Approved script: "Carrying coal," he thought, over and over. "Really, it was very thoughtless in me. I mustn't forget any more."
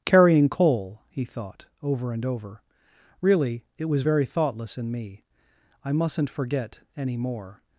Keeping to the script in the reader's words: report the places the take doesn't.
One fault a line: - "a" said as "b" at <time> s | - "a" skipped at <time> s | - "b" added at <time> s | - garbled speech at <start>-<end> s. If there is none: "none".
none